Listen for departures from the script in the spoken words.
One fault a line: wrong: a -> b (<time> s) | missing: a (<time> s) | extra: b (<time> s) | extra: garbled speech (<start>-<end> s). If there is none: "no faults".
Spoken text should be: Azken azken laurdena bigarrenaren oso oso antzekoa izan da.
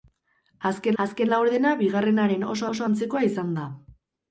no faults